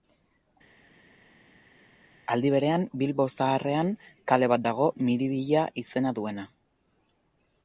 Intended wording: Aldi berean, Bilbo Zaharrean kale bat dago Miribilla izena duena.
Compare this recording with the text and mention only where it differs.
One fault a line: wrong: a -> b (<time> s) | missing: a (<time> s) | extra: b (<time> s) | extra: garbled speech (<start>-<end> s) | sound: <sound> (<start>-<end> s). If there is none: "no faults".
no faults